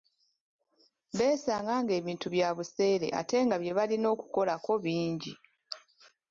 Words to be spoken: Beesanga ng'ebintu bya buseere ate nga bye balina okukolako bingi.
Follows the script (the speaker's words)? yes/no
yes